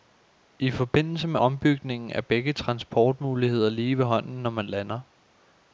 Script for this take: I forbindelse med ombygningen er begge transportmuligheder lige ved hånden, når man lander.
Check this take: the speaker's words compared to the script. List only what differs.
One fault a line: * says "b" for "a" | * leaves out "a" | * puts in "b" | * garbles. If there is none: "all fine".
all fine